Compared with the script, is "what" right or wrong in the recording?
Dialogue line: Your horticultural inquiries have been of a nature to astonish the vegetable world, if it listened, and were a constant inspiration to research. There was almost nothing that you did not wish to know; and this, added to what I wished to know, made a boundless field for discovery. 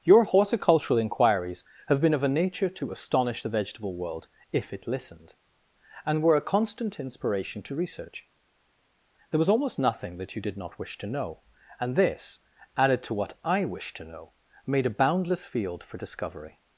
right